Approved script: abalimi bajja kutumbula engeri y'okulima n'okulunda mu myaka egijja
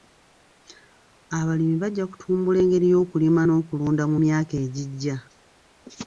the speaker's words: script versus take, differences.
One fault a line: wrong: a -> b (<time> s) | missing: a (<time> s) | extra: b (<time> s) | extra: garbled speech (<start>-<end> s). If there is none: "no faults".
no faults